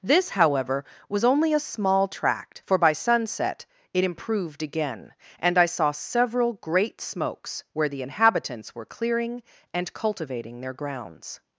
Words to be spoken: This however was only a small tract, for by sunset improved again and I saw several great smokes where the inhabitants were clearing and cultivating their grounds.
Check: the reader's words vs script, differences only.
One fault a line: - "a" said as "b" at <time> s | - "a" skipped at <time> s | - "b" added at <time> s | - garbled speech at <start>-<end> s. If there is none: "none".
- "it" added at 3.9 s